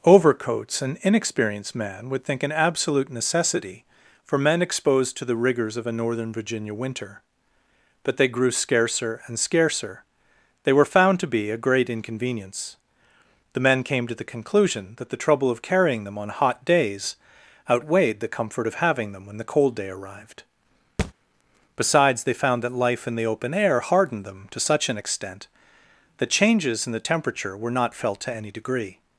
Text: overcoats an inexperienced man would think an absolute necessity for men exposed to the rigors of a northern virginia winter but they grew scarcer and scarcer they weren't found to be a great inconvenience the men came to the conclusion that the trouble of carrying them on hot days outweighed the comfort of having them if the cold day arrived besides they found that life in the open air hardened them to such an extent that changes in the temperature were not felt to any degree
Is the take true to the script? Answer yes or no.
no